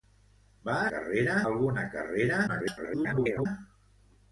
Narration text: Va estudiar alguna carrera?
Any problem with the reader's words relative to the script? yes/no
yes